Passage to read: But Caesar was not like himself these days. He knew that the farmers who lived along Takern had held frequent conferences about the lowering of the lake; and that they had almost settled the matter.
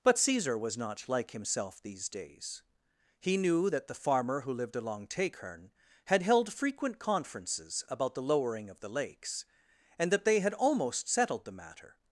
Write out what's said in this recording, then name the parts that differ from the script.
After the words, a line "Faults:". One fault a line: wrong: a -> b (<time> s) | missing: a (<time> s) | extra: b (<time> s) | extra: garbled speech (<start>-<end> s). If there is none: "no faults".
But Caesar was not like himself these days. He knew that the farmer who lived along Takern had held frequent conferences about the lowering of the lakes; and that they had almost settled the matter.
Faults:
wrong: farmers -> farmer (3.9 s)
wrong: lake -> lakes (8.9 s)